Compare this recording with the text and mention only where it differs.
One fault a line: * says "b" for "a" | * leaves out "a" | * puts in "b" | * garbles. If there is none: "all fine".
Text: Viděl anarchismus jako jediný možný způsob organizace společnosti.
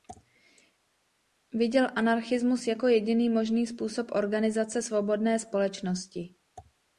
* puts in "svobodné"